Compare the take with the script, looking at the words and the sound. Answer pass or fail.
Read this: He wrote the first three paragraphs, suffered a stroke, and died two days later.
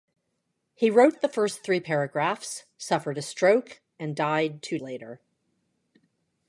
fail